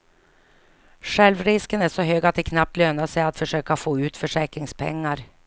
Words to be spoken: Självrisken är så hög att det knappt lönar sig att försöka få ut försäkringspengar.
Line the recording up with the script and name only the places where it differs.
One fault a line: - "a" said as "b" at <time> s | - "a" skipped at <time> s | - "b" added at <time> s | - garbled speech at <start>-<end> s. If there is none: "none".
none